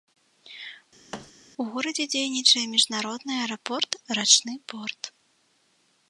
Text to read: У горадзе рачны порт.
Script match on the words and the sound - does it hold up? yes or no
no